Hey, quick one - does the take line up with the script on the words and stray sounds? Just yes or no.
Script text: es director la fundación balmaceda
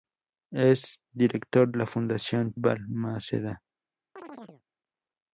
no